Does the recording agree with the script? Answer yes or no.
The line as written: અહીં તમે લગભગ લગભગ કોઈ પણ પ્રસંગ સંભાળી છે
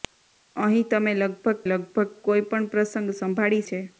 yes